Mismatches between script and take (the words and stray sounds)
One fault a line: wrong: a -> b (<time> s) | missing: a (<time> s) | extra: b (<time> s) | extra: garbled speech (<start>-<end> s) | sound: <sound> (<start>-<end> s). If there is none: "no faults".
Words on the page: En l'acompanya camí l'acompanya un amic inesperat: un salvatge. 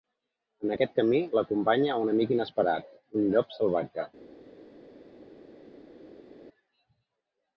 wrong: l'acompanya -> aquest (0.7 s)
extra: llop (3.4 s)